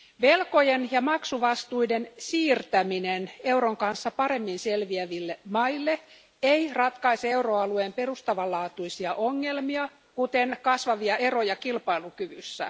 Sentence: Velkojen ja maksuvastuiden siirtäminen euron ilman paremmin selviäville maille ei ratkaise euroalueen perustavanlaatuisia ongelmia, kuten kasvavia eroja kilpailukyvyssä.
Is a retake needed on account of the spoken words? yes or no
yes